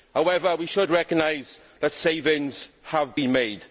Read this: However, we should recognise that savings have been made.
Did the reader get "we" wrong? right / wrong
right